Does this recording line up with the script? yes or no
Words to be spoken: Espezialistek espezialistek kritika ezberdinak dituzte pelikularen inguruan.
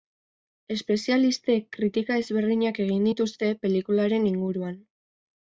no